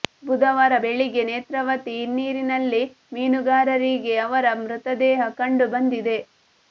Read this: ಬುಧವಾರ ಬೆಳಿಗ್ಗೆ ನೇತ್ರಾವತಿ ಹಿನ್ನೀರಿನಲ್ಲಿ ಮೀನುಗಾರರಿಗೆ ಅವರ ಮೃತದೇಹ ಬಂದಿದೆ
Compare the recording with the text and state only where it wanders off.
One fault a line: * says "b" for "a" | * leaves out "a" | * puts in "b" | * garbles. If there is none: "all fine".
* puts in "ಕಂಡು"